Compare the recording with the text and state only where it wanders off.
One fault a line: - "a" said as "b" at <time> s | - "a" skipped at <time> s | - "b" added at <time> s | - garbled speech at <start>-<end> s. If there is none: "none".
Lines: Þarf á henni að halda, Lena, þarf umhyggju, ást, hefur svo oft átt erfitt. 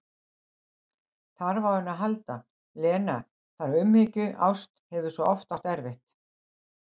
none